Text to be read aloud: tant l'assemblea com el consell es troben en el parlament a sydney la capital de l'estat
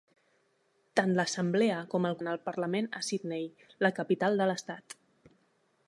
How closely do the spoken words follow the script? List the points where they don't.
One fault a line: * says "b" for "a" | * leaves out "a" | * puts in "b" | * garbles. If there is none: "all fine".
* leaves out "consell es troben"